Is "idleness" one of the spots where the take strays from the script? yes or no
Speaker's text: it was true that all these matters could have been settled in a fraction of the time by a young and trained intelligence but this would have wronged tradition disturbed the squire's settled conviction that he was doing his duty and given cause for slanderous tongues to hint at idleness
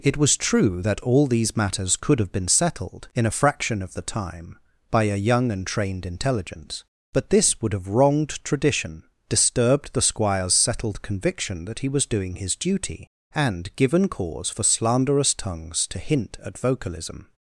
yes